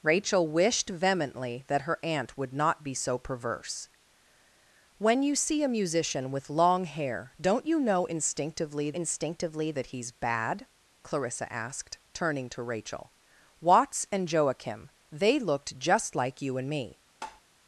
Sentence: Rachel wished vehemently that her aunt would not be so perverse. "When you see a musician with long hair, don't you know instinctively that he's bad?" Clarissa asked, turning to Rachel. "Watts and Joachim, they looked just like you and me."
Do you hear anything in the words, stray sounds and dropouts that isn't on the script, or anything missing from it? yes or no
yes